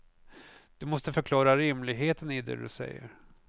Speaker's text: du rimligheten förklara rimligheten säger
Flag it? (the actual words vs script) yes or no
yes